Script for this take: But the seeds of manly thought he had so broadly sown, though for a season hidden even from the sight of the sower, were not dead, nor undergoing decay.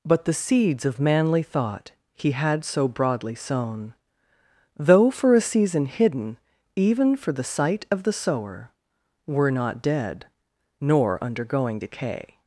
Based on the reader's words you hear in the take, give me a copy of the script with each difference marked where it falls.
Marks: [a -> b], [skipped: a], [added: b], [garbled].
But the seeds of manly thought he had so broadly sown, though for a season hidden even [from -> for] the sight of the sower, were not dead, nor undergoing decay.